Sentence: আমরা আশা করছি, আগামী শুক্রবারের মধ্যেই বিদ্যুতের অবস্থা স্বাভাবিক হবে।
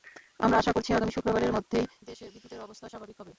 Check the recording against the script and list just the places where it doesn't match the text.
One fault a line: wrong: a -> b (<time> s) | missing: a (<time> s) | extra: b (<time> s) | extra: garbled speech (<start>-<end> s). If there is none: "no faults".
extra: দেশে (2.0 s)